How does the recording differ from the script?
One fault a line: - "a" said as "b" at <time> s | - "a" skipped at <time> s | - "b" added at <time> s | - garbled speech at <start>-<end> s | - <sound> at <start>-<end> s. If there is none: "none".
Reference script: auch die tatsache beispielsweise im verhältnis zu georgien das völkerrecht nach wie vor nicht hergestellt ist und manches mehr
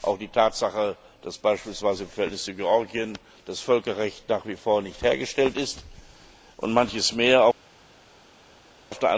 - "dass" added at 1.2 s